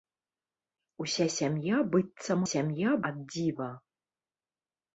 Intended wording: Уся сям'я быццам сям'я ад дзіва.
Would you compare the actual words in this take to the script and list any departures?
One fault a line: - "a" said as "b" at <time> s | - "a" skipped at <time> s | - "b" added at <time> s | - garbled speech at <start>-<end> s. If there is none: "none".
none